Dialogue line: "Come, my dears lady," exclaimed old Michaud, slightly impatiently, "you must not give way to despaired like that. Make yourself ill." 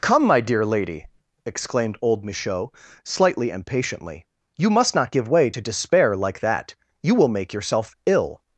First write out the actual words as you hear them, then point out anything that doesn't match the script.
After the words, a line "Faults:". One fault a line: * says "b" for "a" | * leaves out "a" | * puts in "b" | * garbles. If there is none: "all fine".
"Come, my dear lady," exclaimed old Michaud, slightly impatiently, "you must not give way to despair like that. You will make yourself ill."
Faults:
* says "dear" for "dears"
* says "despair" for "despaired"
* puts in "You will"